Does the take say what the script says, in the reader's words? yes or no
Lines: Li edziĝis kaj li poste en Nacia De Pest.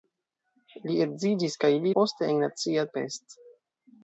yes